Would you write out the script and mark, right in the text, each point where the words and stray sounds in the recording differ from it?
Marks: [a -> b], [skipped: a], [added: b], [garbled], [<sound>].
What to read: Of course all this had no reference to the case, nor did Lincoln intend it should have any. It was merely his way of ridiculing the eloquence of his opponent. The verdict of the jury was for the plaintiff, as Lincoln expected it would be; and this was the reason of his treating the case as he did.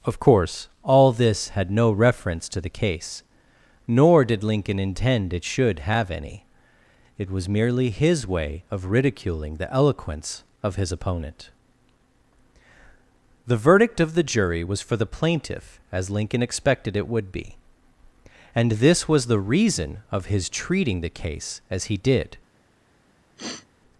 Of course all this had no reference to the case, nor did Lincoln intend it should have any. It was merely his way of ridiculing the eloquence of his opponent. The verdict of the jury was for the plaintiff, as Lincoln expected it would be; and this was the reason of his treating the case as he did. [sniff]